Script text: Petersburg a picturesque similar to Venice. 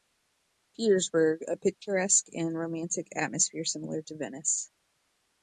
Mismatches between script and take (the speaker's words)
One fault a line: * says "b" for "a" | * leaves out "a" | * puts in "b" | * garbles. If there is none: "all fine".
* puts in "and romantic atmosphere"